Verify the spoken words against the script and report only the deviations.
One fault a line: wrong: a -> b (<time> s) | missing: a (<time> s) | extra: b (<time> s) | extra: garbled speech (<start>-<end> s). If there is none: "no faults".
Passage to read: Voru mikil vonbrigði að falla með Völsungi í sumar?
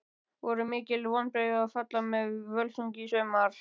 no faults